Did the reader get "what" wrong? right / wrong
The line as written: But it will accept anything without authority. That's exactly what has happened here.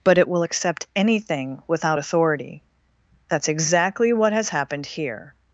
right